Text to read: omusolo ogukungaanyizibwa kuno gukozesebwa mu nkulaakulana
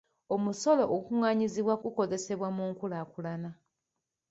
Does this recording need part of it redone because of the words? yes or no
yes